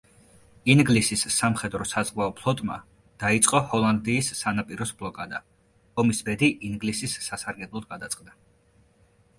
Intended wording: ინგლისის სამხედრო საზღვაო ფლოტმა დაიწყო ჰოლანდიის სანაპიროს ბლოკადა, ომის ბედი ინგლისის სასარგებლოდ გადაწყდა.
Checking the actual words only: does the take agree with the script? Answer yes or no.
yes